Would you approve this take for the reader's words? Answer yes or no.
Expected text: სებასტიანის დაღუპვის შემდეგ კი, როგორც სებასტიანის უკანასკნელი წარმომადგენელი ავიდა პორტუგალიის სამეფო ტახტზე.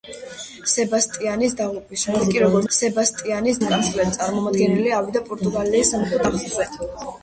yes